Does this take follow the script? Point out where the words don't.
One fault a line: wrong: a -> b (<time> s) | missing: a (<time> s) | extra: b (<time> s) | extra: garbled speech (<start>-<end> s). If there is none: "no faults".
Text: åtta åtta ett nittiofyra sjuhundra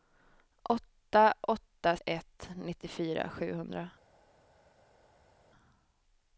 no faults